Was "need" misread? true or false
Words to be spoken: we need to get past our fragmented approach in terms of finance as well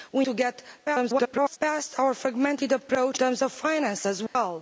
true